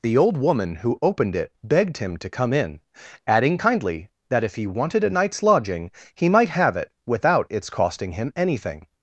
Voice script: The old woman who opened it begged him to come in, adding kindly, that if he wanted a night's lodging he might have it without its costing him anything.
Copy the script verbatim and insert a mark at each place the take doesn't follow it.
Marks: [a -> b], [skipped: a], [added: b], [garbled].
The old woman who opened it begged him to come in, adding kindly, that if he wanted a night's lodging he might have it without its costing him anything.